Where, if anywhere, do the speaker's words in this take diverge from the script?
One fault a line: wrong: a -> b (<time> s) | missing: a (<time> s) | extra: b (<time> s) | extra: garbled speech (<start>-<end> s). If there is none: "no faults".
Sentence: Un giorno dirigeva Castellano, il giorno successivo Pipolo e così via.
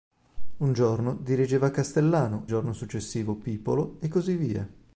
missing: il (2.5 s)